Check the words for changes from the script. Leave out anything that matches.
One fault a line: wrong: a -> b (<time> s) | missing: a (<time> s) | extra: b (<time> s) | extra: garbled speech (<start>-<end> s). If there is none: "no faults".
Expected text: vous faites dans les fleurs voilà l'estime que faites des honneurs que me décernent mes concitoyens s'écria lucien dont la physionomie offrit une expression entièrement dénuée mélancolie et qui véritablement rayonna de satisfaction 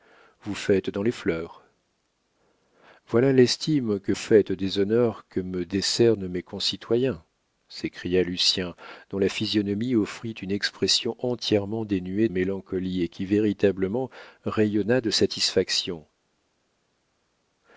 no faults